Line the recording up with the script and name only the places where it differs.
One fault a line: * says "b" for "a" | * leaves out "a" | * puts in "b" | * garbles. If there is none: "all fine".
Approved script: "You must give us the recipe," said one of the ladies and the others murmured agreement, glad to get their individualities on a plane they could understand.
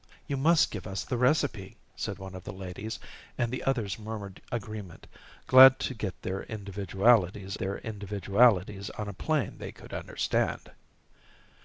* puts in "their individualities"